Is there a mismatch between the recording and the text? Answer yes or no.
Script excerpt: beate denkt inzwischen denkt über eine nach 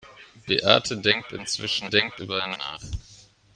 no